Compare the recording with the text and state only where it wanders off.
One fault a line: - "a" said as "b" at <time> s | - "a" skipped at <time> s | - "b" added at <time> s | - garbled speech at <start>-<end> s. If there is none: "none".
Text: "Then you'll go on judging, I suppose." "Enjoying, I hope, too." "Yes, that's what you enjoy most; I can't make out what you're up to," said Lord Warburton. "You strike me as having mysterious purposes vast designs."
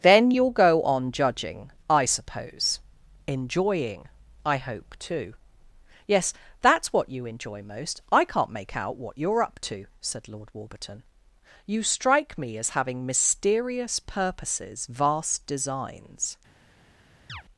none